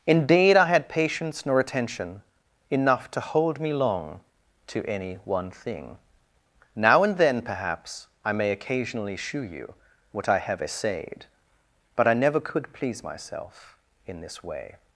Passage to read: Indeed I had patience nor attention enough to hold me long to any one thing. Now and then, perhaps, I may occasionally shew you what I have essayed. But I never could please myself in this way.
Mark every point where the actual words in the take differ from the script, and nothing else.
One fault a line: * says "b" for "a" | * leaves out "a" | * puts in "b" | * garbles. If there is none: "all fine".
all fine